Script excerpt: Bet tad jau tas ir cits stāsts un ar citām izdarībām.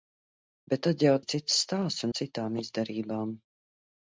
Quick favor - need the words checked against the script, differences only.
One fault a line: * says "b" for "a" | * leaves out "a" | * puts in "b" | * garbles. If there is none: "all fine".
* leaves out "tas"
* leaves out "un"